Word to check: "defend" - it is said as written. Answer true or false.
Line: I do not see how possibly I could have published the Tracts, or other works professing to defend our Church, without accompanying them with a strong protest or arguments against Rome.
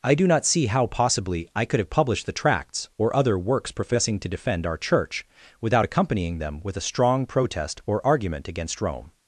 true